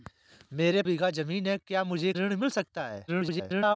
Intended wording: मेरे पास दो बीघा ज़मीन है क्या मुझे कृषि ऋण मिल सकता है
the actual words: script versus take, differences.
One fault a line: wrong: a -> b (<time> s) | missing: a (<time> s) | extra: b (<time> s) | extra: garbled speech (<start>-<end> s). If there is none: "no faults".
missing: पास दो (0.8 s)
missing: कृषि (2.1 s)
extra: garbled speech (3.1-3.8 s)